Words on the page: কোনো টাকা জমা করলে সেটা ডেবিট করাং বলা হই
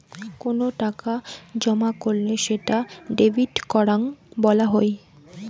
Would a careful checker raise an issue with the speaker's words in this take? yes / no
no